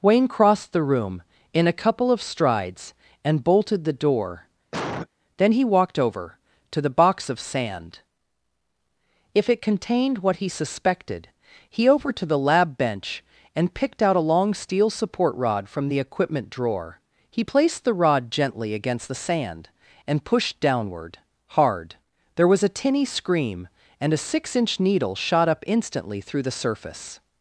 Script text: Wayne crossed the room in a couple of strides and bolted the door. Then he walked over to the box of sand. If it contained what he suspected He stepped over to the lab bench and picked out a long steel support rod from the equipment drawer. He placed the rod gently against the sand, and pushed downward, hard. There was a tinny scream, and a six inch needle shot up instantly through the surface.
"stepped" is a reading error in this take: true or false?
true